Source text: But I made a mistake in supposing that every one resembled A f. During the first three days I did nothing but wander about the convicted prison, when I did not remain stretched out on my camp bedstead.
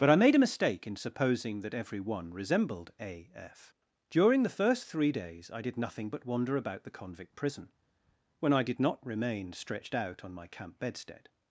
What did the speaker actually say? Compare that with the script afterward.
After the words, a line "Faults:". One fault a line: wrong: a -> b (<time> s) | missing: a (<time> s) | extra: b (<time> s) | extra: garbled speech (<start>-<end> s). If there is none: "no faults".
But I made a mistake in supposing that every one resembled A f. During the first three days I did nothing but wander about the convict prison, when I did not remain stretched out on my camp bedstead.
Faults:
wrong: convicted -> convict (6.9 s)